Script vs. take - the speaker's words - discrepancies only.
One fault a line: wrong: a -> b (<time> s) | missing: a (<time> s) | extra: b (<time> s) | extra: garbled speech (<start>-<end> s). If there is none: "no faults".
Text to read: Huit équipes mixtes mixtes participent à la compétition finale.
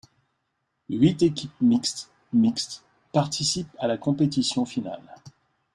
no faults